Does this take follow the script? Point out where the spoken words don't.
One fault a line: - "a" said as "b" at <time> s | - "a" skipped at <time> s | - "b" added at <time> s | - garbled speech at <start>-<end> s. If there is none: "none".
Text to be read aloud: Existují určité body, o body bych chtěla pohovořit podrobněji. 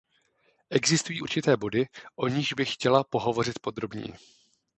- "body" said as "nichž" at 2.3 s